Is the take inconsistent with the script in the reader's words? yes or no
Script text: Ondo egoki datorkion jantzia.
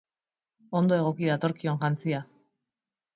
no